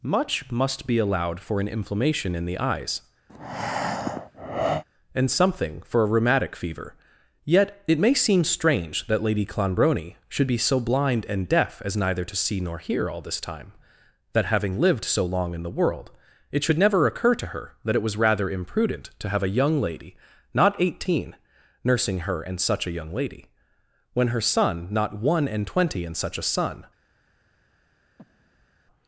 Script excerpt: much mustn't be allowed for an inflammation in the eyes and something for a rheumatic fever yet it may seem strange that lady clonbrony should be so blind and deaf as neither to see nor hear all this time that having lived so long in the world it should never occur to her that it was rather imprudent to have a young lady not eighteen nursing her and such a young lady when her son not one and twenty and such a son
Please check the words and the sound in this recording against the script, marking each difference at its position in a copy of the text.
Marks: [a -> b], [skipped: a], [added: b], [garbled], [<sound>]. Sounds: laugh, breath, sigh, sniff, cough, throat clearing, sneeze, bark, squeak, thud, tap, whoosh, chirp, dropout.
much [mustn't -> must] be allowed for an inflammation in the eyes [breath] and something for a rheumatic fever yet it may seem strange that lady clonbrony should be so blind and deaf as neither to see nor hear all this time that having lived so long in the world it should never occur to her that it was rather imprudent to have a young lady not eighteen nursing her and such a young lady when her son not one and twenty and such a son [breath]